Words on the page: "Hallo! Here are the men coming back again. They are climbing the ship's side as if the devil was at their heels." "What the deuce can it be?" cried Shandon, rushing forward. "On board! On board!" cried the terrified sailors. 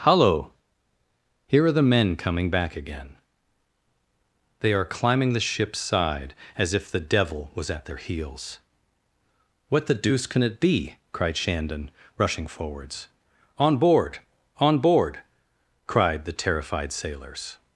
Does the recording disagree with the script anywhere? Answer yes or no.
yes